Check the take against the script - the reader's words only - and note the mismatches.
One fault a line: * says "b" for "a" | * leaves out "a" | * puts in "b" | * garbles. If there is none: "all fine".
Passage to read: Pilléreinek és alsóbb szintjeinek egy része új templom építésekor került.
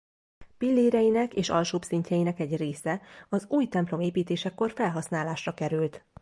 * puts in "az"
* puts in "felhasználásra"